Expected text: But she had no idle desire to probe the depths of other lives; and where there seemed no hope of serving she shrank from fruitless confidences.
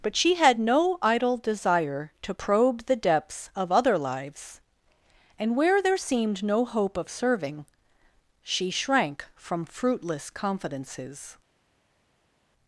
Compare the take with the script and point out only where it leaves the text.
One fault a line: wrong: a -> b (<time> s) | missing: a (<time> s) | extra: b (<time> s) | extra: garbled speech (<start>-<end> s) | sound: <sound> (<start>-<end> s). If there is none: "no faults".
no faults